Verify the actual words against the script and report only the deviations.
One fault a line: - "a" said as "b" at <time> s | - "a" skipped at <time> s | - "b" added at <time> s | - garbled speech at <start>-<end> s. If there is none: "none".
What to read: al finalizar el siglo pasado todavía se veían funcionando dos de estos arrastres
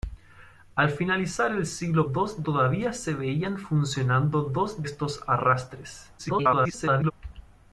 - "pasado" said as "dos" at 2.0 s
- "de" skipped at 4.9 s
- garbled speech at 6.2-7.1 s